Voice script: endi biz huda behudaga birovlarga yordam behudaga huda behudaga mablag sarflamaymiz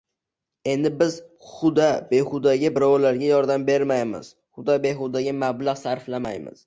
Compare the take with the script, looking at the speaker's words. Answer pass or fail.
fail